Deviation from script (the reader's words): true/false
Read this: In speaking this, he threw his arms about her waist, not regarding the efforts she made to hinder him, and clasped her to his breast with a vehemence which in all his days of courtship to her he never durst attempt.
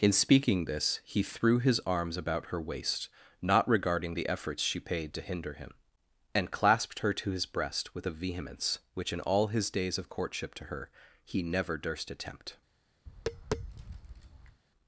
true